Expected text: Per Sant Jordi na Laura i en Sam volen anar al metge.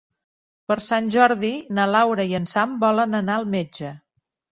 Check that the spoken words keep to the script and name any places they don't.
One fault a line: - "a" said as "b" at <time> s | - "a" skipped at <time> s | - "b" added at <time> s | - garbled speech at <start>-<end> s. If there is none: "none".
none